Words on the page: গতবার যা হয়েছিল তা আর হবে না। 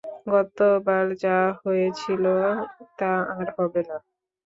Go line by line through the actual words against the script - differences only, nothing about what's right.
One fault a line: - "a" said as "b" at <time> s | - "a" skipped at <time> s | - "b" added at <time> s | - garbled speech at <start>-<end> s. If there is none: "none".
none